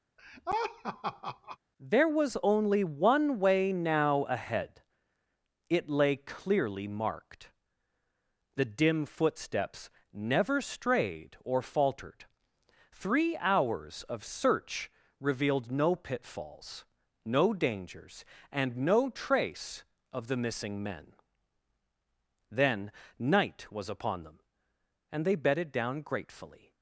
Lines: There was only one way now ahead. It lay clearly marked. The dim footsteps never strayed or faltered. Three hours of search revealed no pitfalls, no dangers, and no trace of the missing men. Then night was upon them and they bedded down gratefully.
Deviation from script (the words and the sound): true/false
true